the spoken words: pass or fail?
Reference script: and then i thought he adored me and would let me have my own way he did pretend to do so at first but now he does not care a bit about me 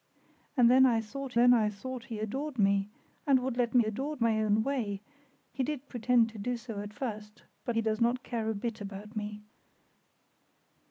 fail